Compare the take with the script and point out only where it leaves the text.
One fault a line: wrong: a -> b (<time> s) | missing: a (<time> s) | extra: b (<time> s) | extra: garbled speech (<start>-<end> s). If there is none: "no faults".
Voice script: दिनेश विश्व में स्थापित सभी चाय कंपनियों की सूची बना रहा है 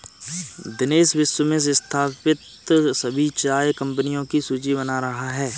no faults